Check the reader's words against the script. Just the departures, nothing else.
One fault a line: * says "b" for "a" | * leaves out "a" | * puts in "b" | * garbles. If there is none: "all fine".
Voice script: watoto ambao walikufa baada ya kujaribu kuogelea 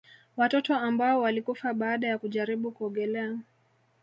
all fine